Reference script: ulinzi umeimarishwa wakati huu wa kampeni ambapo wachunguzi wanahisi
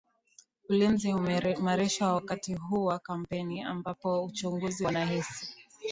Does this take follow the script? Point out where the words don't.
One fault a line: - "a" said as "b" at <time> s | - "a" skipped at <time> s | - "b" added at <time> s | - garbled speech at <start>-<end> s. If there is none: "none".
none